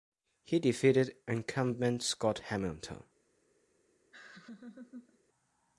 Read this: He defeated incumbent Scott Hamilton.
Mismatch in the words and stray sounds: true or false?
true